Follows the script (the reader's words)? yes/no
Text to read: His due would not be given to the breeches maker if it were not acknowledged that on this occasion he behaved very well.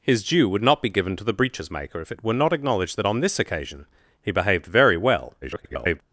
no